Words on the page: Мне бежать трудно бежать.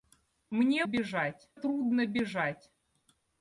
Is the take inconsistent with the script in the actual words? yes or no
no